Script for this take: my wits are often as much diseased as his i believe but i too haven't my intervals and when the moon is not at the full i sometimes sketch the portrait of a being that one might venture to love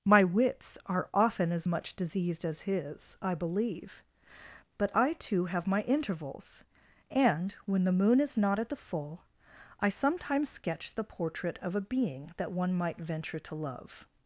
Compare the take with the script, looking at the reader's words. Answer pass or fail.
fail